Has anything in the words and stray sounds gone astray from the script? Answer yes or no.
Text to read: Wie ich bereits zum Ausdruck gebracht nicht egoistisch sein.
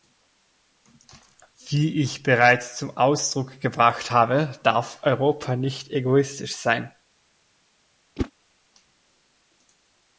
yes